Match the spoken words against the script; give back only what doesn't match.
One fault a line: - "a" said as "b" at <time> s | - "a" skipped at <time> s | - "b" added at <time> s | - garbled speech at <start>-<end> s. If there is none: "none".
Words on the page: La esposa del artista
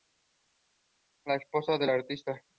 none